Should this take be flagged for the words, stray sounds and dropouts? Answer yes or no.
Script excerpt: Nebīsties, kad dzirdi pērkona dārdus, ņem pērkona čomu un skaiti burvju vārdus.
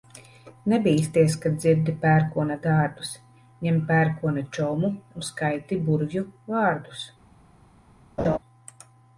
yes